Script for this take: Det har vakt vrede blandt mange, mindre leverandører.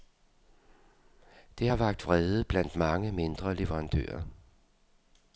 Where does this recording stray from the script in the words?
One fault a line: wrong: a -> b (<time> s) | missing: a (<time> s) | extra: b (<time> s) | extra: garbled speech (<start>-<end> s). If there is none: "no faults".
no faults